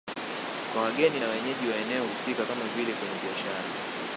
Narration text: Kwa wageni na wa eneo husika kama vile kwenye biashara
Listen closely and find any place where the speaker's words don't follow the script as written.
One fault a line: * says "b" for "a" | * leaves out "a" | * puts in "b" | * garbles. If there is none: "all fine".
* puts in "wenyeji"